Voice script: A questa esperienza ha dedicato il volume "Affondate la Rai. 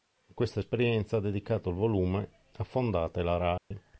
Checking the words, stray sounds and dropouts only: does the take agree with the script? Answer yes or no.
no